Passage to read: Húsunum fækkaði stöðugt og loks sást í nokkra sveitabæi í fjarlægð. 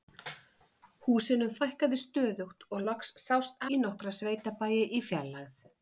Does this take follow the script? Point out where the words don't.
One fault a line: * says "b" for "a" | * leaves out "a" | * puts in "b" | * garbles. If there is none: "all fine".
all fine